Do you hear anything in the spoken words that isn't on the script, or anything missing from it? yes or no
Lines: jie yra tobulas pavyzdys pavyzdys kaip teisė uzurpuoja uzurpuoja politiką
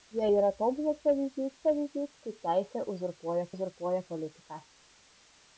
no